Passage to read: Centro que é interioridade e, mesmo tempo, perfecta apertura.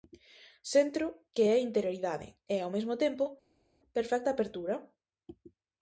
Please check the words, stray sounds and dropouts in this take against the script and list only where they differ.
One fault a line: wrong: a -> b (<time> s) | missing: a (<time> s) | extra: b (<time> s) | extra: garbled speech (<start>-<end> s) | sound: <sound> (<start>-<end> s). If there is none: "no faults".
extra: ao (2.6 s)